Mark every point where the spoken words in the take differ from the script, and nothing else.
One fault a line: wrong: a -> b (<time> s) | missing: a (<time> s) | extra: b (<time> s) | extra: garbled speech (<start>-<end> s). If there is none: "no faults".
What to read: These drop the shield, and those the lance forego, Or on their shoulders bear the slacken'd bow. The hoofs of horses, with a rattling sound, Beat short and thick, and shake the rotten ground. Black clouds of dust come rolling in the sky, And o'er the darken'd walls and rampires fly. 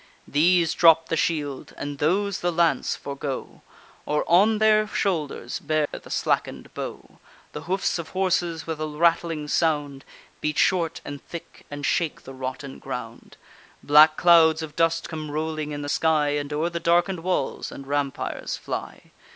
no faults